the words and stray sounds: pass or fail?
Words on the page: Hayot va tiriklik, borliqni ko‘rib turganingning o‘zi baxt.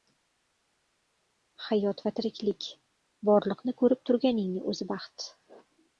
pass